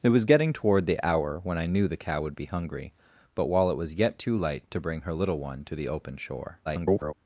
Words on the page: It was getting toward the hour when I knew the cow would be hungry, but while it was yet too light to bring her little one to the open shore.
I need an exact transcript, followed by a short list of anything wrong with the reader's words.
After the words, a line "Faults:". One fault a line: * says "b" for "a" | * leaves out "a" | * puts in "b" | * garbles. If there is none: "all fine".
It was getting toward the hour when I knew the cow would be hungry, but while it was yet too light to bring her little one to the open shore. [garbled]
Faults:
* garbles